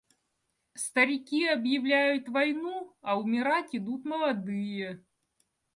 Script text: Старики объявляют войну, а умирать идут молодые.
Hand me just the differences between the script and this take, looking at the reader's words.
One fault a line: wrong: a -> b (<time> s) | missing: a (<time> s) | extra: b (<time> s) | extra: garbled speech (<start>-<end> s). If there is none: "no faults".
no faults